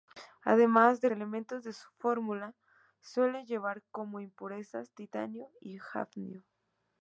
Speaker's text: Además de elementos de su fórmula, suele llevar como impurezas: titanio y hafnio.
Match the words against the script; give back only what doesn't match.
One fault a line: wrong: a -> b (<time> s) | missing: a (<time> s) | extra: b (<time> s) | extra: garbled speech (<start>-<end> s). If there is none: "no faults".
no faults